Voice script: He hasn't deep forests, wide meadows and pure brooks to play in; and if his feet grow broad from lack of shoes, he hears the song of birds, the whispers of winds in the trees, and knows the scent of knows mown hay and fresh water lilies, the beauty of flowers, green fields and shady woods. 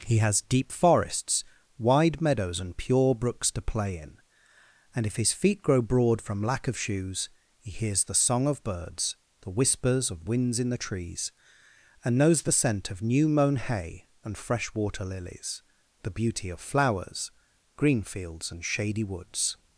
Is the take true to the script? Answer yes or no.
no